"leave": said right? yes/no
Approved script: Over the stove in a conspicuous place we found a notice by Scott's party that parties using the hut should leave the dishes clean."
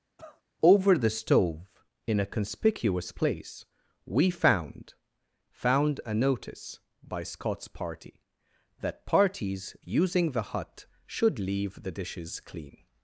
yes